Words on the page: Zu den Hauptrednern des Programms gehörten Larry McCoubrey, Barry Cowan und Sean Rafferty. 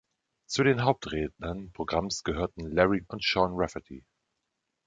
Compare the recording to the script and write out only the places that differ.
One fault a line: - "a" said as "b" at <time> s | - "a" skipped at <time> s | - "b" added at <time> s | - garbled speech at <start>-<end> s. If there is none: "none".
- "des" skipped at 1.7 s
- "McCoubrey Barry Cowan" skipped at 3.0 s